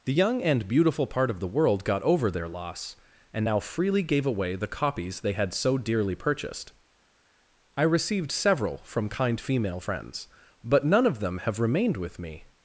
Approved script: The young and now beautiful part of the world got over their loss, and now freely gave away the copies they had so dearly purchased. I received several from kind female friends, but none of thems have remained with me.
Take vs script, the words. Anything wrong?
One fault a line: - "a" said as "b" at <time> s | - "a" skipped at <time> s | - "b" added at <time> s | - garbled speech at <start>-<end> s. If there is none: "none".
- "now" skipped at 0.7 s
- "thems" said as "them" at 11.2 s